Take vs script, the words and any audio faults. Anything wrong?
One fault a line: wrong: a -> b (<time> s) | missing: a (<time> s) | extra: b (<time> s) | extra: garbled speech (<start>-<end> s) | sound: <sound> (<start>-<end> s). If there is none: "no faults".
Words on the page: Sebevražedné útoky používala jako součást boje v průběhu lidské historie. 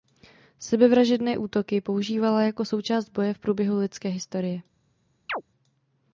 sound: chirp (5.3-5.4 s)